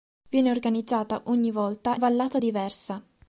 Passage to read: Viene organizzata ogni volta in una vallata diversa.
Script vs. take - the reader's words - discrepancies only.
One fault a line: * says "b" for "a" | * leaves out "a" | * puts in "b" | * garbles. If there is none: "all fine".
* leaves out "in una"